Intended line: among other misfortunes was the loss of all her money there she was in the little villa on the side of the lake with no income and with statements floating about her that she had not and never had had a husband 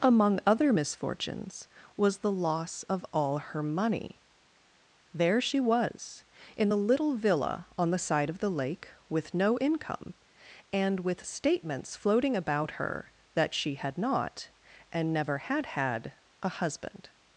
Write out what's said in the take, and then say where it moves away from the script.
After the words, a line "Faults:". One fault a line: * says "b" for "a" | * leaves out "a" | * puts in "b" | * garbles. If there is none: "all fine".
among other misfortunes was the loss of all her money there she was in the little villa on the side of the lake with no income and with statements floating about her that she had not and never had had a husband
Faults:
all fine